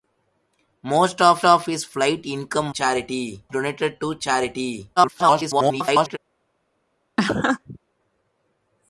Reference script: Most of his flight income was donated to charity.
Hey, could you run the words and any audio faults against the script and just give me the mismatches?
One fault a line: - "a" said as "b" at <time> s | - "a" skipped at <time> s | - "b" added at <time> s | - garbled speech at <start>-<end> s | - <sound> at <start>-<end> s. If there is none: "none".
- "of" added at 1.4 s
- "was" said as "charity" at 2.7 s
- garbled speech at 5.0-6.2 s
- laugh at 7.2-7.8 s